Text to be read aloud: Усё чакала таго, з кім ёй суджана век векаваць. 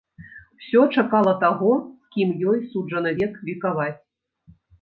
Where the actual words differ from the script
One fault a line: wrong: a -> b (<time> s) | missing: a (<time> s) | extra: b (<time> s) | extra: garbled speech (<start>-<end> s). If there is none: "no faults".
no faults